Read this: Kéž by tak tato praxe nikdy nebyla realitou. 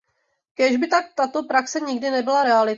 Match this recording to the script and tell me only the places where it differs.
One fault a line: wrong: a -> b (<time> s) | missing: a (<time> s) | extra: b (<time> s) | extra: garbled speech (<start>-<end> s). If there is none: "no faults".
no faults